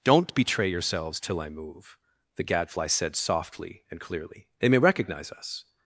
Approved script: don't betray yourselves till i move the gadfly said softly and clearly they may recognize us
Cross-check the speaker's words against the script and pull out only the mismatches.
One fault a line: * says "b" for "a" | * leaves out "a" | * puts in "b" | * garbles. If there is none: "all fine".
all fine